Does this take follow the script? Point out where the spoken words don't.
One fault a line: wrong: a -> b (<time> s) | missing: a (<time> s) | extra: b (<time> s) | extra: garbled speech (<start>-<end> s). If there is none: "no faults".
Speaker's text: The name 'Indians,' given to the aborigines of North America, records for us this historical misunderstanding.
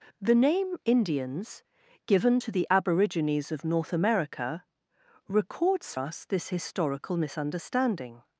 missing: for (5.9 s)